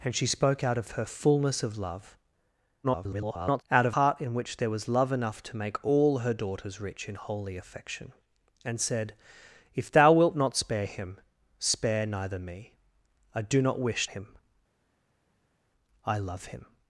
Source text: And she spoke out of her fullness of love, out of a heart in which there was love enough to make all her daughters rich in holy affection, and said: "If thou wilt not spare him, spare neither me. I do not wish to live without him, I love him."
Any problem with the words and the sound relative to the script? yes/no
yes